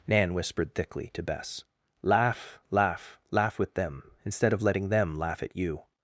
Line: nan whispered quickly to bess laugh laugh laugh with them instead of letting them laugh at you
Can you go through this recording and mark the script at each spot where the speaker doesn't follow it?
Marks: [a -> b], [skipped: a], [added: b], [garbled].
nan whispered [quickly -> thickly] to bess laugh laugh laugh with them instead of letting them laugh at you